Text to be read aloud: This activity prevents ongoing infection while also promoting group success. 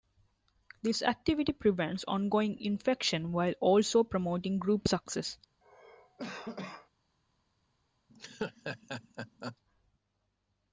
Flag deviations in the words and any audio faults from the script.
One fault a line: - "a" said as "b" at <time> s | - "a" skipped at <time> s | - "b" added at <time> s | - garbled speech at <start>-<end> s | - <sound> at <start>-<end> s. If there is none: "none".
- cough at 5.6-6.9 s
- laugh at 8.1-9.6 s